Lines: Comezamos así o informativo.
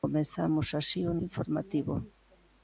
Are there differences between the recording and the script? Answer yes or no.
no